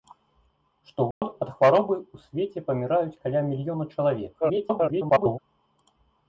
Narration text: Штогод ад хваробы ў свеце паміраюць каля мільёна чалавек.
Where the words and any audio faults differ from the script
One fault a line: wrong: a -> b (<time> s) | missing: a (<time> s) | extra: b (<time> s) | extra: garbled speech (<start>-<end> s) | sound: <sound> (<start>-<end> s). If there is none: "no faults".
sound: dropout (1.1-1.2 s)
extra: garbled speech (4.4-5.4 s)